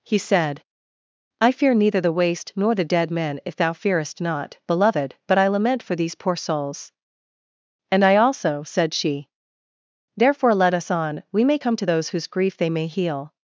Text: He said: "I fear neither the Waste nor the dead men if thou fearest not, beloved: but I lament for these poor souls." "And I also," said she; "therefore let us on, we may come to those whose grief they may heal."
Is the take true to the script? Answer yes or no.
yes